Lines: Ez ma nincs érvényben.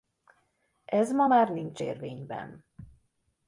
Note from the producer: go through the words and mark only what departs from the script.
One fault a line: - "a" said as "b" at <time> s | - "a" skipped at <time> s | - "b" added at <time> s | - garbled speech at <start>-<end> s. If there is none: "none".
- "már" added at 1.2 s